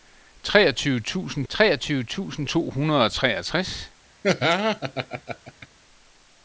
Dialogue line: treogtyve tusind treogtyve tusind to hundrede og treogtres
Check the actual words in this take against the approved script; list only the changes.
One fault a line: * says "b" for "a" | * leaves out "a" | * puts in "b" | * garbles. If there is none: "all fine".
all fine